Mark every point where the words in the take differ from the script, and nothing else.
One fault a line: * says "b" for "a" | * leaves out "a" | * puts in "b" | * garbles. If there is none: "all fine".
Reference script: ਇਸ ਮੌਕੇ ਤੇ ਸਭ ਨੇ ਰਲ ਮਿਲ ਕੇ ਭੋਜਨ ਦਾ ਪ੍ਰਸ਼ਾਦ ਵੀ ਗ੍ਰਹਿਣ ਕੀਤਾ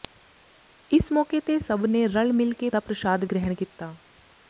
* leaves out "ਭੋਜਨ"
* leaves out "ਵੀ"